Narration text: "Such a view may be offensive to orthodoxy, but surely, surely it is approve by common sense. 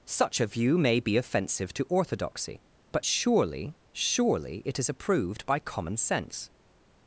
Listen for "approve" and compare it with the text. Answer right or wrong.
wrong